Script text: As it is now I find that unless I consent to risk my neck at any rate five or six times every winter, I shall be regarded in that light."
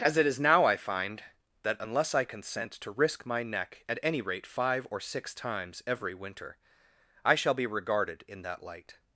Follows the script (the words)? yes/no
yes